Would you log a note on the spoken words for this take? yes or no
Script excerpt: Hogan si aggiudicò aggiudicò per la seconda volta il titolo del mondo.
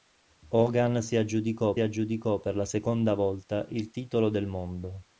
no